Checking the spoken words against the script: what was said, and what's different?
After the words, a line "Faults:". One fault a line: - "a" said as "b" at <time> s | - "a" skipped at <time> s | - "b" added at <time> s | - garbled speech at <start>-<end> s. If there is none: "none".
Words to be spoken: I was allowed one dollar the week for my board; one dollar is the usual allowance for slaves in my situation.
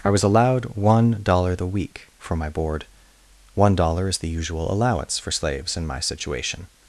I was allowed one dollar the week for my board; one dollar is the usual allowance for slaves in my situation.
Faults:
none